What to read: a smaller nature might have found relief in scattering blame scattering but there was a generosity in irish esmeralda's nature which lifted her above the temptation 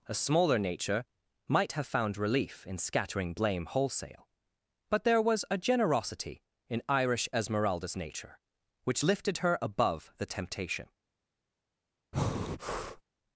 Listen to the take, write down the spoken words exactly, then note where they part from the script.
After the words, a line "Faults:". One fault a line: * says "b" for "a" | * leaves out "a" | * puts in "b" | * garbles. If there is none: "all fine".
a smaller nature might have found relief in scattering blame wholesale but there was a generosity in irish esmeralda's nature which lifted her above the temptation
Faults:
* says "wholesale" for "scattering"